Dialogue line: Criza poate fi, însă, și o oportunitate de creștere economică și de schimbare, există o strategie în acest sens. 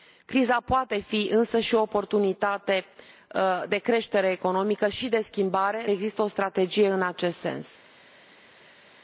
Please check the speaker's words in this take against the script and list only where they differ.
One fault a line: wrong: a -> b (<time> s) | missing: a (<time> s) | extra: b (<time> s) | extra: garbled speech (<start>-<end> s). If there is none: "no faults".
no faults